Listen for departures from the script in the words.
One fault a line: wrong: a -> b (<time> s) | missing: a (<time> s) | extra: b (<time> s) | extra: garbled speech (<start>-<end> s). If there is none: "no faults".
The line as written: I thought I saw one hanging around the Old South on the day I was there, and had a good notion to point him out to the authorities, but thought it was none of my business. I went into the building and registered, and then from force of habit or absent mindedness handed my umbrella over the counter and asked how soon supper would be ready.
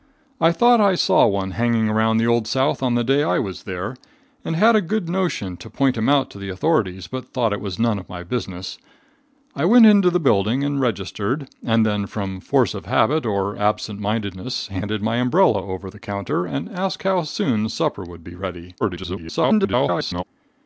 extra: garbled speech (18.8-20.2 s)